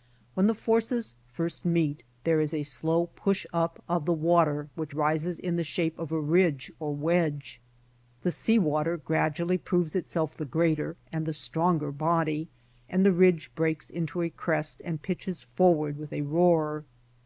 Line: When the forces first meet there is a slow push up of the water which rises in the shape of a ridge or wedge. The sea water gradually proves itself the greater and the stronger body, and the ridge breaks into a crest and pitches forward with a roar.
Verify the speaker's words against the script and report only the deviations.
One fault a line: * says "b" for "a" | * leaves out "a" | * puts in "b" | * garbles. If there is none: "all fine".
all fine